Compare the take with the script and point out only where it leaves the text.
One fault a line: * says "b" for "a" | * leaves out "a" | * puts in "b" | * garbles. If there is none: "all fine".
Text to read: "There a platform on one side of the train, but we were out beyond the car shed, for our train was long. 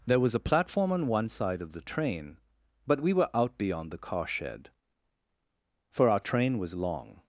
* puts in "was"